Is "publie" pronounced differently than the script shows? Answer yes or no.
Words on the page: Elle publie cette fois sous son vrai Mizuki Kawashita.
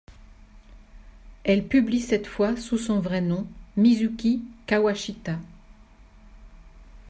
no